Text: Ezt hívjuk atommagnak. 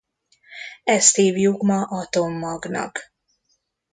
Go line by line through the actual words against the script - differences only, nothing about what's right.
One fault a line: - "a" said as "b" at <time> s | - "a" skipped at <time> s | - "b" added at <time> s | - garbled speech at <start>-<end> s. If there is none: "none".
- "ma" added at 1.6 s